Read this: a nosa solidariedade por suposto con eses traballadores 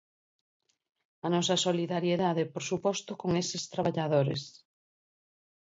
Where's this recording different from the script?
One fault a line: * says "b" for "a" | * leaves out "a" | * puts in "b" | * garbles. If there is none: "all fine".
all fine